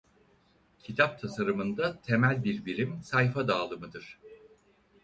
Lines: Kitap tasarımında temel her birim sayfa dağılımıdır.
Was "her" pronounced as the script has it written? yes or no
no